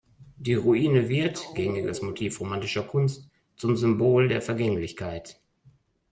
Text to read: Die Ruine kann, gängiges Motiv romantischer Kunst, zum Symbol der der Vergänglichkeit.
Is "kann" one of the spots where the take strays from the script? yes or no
yes